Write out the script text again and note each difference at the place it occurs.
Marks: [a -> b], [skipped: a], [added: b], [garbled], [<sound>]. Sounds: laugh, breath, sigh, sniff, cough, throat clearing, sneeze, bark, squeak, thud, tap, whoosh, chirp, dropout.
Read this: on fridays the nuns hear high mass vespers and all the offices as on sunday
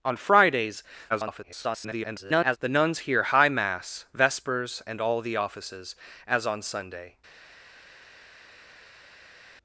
on fridays [garbled] the nuns hear high mass vespers and all the offices as on sunday